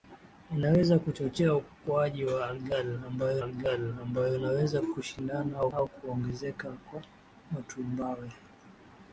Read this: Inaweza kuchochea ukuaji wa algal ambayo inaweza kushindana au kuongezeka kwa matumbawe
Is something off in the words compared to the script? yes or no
yes